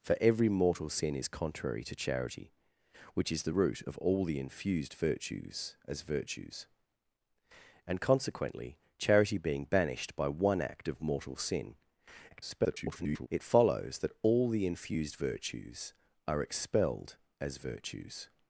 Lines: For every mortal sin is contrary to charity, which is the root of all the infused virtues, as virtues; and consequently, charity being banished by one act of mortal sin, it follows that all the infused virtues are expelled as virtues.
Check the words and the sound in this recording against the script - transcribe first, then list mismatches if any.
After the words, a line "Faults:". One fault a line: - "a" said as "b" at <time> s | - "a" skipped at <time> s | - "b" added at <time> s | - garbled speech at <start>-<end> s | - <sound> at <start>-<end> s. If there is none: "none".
For every mortal sin is contrary to charity, which is the root of all the infused virtues, as virtues; and consequently, charity being banished by one act of mortal sin, [garbled] it follows that all the infused virtues are expelled as virtues.
Faults:
- garbled speech at 12.3-13.3 s